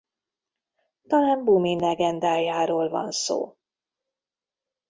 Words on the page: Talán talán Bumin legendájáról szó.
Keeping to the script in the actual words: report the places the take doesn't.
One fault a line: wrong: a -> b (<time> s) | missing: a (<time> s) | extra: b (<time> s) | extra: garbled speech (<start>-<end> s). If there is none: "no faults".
missing: talán (1.4 s)
extra: van (2.9 s)